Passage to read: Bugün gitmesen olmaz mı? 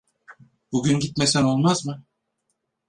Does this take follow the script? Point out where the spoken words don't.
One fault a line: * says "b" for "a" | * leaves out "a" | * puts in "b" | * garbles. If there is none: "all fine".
all fine